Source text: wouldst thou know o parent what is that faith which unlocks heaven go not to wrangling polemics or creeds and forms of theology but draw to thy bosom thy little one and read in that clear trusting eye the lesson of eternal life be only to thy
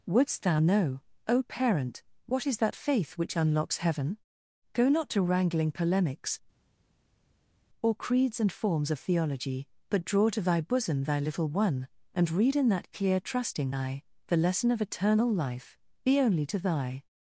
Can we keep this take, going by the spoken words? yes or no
yes